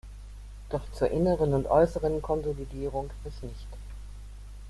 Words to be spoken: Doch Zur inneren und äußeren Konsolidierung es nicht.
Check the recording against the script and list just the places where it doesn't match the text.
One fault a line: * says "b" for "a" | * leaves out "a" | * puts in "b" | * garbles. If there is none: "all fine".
all fine